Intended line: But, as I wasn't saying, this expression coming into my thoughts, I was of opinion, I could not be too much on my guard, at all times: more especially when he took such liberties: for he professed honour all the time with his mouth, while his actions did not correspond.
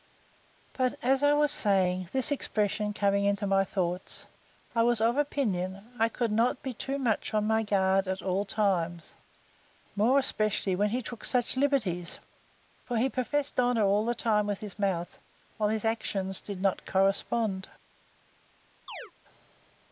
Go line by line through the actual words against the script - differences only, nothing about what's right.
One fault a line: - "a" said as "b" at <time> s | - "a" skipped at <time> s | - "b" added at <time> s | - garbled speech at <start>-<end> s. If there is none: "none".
- "wasn't" said as "was" at 1.3 s